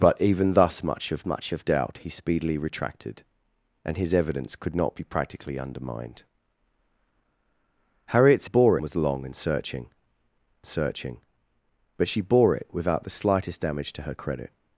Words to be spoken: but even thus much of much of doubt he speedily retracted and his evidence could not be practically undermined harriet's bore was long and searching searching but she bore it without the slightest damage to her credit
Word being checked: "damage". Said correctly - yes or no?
yes